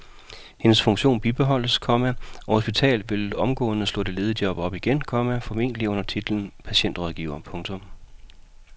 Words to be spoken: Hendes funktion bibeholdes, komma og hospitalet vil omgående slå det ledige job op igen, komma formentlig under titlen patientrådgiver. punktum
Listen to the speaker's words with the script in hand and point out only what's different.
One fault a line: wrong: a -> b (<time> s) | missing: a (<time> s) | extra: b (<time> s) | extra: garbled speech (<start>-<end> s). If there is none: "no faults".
no faults